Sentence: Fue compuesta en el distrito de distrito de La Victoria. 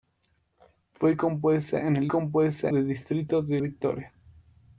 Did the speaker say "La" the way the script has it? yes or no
no